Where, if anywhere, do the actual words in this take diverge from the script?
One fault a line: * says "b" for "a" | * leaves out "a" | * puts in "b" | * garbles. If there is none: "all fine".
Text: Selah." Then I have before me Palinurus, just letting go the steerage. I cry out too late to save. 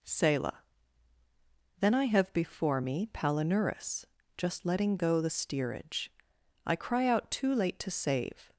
all fine